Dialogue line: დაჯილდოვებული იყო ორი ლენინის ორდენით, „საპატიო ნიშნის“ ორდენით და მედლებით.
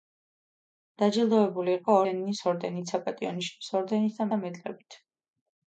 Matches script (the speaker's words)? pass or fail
fail